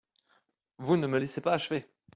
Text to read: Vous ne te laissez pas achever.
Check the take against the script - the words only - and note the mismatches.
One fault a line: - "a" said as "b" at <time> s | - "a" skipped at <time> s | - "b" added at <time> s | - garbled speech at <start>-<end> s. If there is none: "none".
- "te" said as "me" at 1.1 s